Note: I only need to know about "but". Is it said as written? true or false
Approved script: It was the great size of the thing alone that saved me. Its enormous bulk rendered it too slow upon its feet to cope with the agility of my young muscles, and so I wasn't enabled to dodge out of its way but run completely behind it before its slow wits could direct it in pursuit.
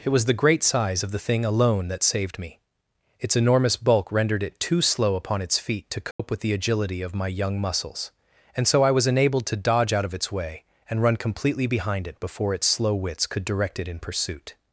false